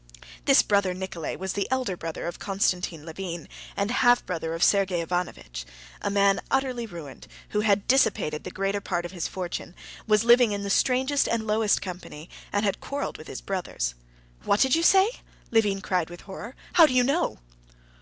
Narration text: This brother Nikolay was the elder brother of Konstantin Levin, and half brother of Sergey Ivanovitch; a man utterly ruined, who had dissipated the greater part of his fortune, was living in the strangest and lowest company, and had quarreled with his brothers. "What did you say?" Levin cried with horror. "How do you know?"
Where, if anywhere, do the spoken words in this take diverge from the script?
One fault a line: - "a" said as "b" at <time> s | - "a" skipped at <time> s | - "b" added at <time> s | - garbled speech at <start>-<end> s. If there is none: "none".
none